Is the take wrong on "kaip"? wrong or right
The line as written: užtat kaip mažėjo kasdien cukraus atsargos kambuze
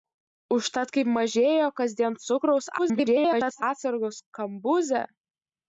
right